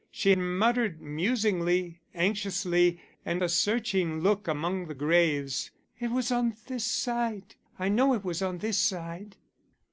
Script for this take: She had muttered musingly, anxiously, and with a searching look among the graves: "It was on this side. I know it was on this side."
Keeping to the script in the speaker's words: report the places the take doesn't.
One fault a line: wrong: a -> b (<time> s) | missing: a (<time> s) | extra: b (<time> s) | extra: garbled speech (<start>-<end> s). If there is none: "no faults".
missing: had (0.3 s)
missing: with (3.4 s)